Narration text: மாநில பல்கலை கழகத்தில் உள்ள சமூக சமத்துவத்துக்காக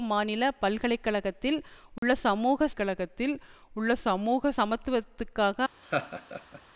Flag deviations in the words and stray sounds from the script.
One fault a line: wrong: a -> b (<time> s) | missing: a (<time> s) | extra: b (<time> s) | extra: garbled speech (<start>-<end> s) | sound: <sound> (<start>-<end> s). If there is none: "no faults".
sound: dropout (2.0-2.0 s)
extra: கழகத்தில் உள்ள சமூக (2.7 s)
sound: laugh (5.8-6.6 s)